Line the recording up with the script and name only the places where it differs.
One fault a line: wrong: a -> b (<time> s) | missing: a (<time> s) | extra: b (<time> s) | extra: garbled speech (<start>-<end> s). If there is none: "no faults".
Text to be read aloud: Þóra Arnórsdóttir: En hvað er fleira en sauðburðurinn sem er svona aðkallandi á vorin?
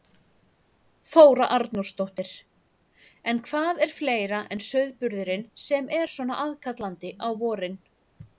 no faults